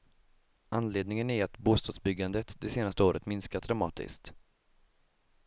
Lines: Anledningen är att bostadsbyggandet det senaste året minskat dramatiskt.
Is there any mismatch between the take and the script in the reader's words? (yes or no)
no